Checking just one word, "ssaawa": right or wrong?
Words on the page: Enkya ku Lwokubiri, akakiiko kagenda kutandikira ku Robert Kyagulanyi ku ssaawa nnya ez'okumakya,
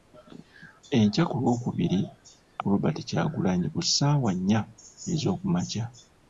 right